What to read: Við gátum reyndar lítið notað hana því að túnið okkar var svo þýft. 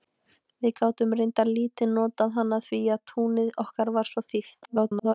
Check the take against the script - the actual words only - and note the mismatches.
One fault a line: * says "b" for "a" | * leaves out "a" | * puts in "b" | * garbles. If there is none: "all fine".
* garbles